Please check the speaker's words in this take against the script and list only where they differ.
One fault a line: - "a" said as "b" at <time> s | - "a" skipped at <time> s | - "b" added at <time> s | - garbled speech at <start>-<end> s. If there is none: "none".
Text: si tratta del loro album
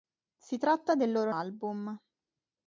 none